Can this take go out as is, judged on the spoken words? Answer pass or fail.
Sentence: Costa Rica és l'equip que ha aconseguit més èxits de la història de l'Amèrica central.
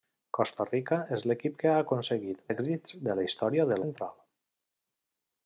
fail